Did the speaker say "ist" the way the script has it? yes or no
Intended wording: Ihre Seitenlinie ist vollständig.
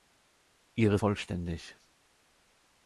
no